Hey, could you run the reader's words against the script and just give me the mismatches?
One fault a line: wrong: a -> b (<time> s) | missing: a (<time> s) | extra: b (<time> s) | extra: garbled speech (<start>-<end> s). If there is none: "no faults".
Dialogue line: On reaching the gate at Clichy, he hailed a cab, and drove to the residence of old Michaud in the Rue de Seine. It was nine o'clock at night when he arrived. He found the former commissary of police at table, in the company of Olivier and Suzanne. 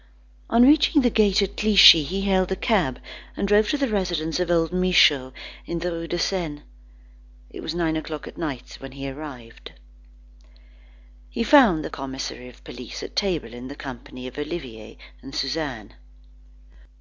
missing: former (11.9 s)